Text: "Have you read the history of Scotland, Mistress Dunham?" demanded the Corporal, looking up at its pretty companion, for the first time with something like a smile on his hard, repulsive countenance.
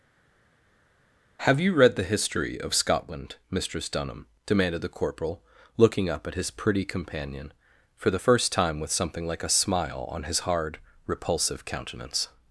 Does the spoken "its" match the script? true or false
false